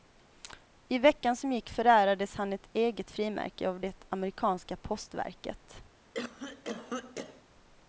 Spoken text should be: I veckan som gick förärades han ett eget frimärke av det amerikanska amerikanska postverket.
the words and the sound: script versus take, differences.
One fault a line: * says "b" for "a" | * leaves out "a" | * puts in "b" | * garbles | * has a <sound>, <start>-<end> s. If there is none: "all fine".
* leaves out "amerikanska"
* has a cough, 6.1-7.4 s